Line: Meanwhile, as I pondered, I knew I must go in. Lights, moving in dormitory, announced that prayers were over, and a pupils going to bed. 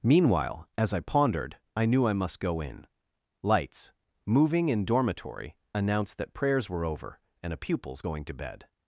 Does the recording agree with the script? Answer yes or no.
yes